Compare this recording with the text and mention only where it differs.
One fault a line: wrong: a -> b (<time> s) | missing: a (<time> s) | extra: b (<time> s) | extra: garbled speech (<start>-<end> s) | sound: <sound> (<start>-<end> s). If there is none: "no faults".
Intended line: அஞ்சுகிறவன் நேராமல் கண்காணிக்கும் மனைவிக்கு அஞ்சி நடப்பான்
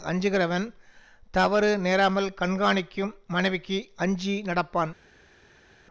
extra: தவறு (1.3 s)